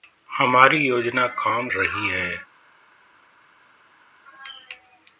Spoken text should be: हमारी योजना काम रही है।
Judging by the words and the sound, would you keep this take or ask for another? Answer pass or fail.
pass